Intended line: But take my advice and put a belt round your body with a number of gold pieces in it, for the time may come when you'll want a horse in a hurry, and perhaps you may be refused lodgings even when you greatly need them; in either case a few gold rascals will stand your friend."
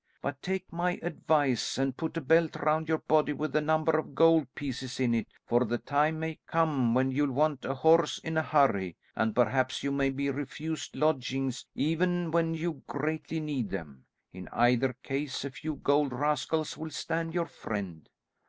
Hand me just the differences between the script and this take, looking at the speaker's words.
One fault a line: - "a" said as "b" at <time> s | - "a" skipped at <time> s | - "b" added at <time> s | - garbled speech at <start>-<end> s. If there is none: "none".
none